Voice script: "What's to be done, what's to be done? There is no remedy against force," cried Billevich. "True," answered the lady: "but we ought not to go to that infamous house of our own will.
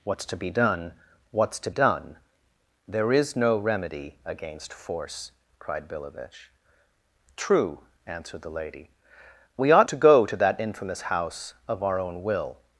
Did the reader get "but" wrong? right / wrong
wrong